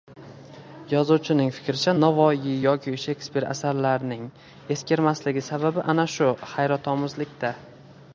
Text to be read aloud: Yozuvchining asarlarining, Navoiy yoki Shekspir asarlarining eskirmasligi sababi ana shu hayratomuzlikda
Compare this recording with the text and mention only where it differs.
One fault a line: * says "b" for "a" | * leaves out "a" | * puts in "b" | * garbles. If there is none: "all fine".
* says "fikricha" for "asarlarining"